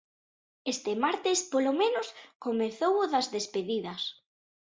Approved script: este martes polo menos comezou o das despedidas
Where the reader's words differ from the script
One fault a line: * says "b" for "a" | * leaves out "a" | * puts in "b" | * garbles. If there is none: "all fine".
all fine